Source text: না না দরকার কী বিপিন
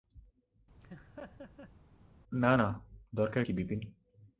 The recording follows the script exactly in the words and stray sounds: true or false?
false